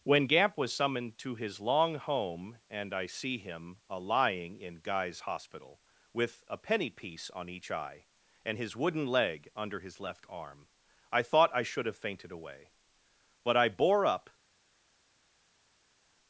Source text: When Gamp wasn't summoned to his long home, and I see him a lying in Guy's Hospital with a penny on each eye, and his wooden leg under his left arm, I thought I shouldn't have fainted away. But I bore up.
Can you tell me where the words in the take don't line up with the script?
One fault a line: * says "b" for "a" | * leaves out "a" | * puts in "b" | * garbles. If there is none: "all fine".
* says "was" for "wasn't"
* puts in "piece"
* says "should" for "shouldn't"